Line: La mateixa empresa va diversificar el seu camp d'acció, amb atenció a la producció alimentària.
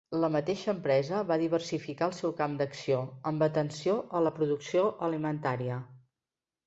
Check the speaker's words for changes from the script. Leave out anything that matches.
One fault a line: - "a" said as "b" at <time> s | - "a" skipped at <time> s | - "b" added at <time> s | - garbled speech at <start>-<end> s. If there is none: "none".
none